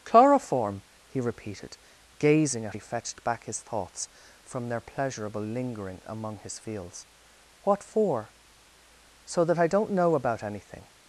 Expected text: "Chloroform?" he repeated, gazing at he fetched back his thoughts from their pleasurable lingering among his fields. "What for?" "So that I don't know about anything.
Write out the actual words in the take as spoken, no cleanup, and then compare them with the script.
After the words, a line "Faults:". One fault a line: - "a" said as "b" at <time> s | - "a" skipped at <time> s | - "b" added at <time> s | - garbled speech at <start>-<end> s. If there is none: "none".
"Chloroform?" he repeated, gazing at he fetched back his thoughts from their pleasurable lingering among his fields. "What for?" "So that I don't know about anything.
Faults:
none